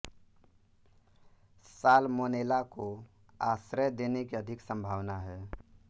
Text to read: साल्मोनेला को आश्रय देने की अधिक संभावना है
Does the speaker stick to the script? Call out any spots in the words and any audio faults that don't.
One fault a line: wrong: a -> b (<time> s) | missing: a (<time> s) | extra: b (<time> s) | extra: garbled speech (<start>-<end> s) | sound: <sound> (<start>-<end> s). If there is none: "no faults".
no faults